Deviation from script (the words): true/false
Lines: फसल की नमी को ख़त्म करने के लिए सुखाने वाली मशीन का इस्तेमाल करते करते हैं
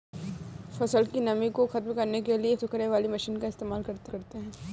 false